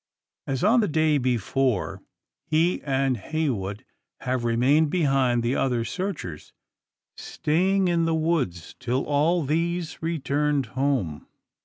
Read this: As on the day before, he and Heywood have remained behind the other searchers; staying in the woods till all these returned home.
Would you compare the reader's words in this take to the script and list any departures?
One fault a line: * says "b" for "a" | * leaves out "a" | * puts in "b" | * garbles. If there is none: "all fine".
all fine